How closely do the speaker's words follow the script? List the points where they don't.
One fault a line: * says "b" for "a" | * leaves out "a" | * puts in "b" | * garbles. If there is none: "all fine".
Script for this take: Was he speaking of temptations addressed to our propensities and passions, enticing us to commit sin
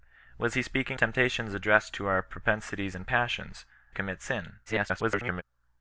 * leaves out "of"
* leaves out "enticing us to"
* garbles